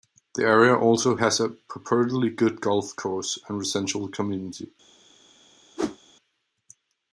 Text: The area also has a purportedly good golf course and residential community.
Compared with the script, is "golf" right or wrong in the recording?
right